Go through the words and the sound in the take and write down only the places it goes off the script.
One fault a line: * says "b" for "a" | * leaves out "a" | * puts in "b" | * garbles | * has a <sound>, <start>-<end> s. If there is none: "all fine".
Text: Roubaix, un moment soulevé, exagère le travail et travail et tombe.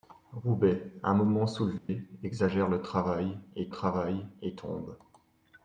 * has a dropout, 1.8-1.9 s